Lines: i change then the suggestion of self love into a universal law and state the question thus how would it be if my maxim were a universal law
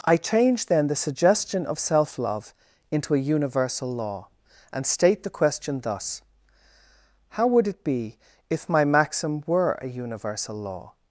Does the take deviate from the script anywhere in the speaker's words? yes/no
no